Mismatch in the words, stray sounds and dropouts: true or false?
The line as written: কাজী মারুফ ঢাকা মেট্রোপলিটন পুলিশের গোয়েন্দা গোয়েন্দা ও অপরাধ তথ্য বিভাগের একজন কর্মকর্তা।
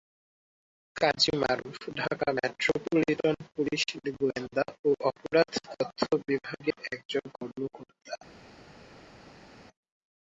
true